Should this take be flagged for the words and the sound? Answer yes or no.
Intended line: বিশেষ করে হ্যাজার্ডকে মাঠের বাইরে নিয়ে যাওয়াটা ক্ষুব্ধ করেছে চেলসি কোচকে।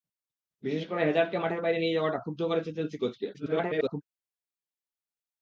yes